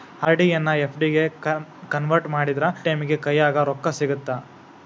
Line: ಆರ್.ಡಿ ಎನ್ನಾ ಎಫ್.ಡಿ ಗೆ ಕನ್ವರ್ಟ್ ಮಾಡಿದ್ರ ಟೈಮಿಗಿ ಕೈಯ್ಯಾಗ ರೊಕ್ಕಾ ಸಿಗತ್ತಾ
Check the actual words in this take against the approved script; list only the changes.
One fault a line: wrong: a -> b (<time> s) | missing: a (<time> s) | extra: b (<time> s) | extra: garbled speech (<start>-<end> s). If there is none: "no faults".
no faults